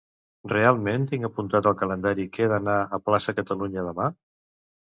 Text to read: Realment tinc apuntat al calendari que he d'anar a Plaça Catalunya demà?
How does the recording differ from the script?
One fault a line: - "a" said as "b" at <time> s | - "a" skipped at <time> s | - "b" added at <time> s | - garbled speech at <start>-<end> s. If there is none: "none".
none